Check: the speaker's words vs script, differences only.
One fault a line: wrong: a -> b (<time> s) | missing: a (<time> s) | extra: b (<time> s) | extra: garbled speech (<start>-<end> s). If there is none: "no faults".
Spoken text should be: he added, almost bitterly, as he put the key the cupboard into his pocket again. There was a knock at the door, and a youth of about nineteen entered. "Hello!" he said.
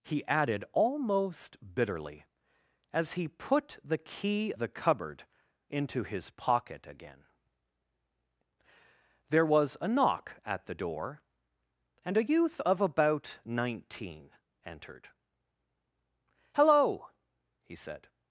no faults